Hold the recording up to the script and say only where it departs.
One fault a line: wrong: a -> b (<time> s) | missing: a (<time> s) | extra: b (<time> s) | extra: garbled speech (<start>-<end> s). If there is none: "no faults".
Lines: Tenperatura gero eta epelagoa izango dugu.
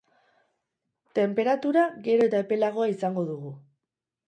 no faults